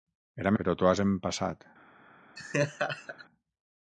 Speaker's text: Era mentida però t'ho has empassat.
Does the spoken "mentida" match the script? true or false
false